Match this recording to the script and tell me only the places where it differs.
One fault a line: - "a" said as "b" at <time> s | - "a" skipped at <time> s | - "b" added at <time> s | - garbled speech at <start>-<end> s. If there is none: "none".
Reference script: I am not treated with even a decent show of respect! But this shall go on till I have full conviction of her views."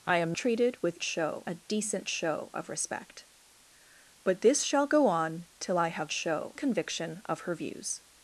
- "not" skipped at 0.3 s
- "even" said as "show" at 1.0 s
- "full" said as "show" at 6.1 s